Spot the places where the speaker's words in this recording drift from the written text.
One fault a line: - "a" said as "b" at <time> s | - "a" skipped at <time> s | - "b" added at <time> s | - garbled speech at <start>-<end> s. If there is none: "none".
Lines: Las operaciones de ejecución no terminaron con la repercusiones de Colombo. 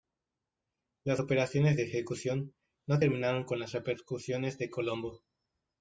- "la" said as "las" at 3.6 s